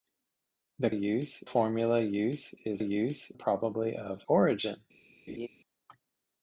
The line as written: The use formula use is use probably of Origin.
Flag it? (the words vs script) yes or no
no